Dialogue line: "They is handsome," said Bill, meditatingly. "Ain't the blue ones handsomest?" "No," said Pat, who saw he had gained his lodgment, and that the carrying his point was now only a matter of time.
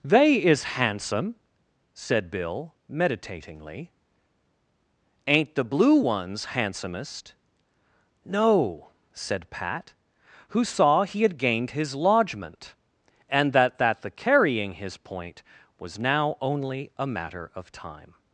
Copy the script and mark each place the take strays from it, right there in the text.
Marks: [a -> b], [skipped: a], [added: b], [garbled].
"They is handsome," said Bill, meditatingly. "Ain't the blue ones handsomest?" "No," said Pat, who saw he had gained his lodgment, and that [added: that] the carrying his point was now only a matter of time.